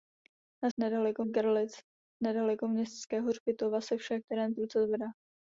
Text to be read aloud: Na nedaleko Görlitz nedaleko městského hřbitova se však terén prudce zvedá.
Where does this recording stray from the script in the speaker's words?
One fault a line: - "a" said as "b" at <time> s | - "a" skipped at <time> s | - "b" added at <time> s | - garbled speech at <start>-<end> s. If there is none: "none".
none